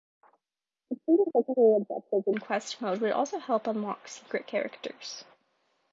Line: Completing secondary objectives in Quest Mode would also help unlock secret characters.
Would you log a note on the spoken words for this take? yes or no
no